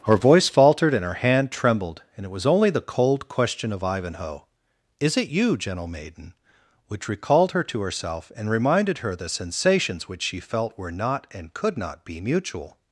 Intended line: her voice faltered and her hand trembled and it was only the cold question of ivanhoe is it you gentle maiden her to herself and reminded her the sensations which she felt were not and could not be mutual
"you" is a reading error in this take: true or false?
false